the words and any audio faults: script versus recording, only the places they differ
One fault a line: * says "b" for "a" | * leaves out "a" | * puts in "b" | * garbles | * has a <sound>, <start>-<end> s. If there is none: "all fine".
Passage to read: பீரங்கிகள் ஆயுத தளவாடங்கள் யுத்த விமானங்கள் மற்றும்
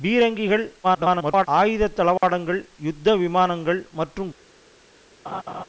* garbles
* has a dropout, 2.2-2.2 s
* has a laugh, 5.3-5.7 s